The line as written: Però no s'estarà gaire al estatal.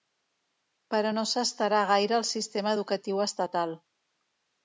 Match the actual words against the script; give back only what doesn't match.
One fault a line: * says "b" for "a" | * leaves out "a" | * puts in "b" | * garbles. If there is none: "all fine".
* puts in "sistema educatiu"